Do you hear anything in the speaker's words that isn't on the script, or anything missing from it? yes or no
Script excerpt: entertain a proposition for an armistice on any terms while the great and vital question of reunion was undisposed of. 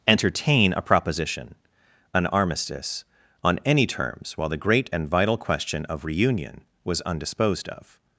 yes